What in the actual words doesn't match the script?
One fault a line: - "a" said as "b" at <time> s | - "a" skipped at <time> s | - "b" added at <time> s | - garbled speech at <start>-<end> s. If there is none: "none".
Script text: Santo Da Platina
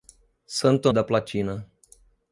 none